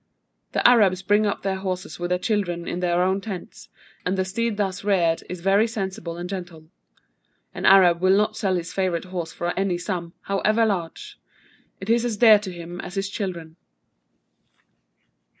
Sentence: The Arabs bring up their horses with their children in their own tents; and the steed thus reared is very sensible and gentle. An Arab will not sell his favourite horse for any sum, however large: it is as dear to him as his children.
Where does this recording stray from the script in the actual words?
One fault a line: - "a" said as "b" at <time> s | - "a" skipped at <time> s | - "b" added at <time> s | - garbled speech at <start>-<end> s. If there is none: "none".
none